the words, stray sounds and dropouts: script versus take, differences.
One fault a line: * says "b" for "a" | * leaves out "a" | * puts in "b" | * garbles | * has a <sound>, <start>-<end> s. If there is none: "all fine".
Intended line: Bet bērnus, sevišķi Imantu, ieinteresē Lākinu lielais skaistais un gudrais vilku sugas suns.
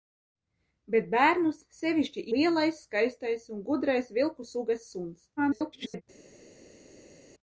* leaves out "Imantu ieinteresē Lākinu"
* garbles